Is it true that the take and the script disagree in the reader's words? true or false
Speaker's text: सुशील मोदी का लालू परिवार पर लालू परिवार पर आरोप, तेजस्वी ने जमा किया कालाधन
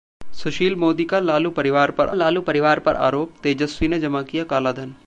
false